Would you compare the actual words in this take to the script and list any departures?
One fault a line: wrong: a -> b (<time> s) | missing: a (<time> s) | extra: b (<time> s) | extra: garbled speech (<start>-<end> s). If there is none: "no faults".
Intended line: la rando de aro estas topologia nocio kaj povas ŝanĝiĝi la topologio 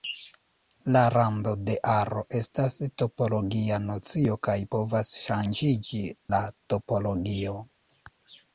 no faults